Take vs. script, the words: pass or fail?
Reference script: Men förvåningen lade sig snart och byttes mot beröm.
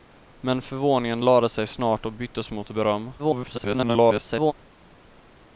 fail